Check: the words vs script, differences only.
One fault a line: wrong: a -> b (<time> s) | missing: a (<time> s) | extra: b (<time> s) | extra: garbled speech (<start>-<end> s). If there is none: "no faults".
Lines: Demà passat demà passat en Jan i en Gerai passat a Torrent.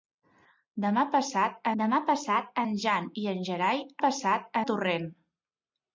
no faults